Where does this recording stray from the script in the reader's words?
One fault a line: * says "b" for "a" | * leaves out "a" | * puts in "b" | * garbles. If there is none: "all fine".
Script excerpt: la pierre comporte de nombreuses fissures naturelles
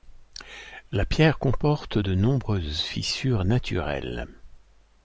all fine